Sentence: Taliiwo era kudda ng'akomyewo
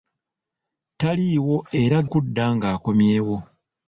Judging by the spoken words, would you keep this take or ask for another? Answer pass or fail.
pass